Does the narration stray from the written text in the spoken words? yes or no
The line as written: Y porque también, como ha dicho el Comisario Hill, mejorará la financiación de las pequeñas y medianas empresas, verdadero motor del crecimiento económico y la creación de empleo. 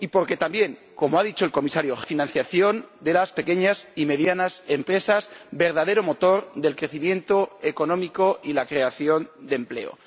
yes